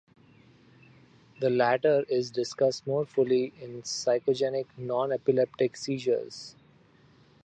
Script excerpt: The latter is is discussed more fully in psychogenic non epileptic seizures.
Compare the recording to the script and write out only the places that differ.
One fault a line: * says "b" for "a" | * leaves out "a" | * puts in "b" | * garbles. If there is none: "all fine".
* leaves out "is"